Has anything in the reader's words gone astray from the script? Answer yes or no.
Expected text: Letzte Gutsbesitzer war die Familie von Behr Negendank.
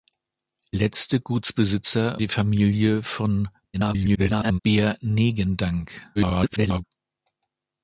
yes